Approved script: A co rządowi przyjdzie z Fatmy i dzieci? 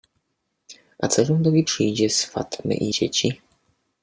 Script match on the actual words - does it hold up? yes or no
yes